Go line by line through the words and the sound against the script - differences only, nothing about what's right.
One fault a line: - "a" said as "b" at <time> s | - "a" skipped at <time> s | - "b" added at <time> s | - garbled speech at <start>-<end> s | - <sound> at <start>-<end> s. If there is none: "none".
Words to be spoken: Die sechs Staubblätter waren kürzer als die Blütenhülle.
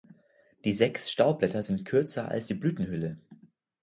- "waren" said as "sind" at 1.6 s